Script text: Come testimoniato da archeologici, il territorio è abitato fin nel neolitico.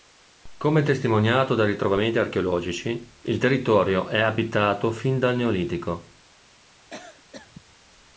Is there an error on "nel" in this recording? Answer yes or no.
yes